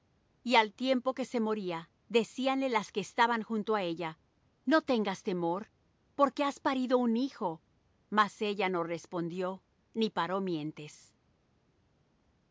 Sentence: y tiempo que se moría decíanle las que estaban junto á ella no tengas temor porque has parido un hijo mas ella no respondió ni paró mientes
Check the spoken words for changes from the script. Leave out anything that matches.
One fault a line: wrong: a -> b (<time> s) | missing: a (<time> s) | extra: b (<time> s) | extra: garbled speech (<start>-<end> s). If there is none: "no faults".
extra: al (0.6 s)